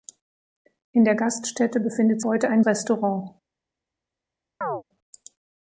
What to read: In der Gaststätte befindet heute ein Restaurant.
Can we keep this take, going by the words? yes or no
yes